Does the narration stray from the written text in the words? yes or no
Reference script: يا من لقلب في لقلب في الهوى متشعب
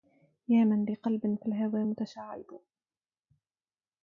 yes